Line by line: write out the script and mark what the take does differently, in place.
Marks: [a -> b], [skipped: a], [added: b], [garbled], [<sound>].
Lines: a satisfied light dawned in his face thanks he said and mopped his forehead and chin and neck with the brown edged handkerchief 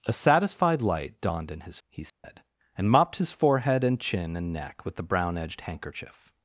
a satisfied light dawned in his [skipped: face thanks] he said [dropout] and mopped his forehead and chin and neck with the brown edged handkerchief